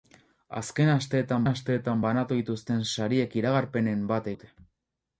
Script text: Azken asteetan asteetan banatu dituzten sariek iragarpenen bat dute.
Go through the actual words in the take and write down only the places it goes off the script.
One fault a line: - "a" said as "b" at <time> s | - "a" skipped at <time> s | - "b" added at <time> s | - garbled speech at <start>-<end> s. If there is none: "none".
none